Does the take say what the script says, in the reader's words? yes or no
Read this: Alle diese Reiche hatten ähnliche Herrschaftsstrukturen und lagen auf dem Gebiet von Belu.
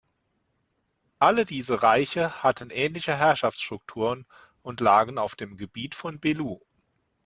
yes